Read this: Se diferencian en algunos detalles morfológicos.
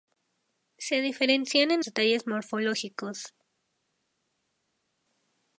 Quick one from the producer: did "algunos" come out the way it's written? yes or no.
no